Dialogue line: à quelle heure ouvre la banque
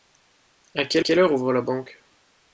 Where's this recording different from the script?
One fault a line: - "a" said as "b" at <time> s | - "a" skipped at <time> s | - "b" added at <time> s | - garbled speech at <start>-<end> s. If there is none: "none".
- "quelle" added at 1.0 s